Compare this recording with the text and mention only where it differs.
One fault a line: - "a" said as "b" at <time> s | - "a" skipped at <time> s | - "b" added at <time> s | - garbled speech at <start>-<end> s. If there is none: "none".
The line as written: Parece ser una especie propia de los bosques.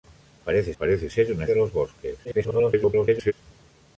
- "parece" added at 0.8 s
- "especie propia" skipped at 1.5 s
- garbled speech at 2.2-3.3 s